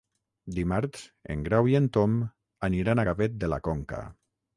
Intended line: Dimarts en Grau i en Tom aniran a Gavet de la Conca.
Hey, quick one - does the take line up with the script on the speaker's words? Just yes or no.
yes